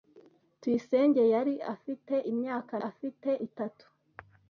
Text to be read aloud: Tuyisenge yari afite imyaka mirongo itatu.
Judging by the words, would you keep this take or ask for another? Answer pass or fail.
fail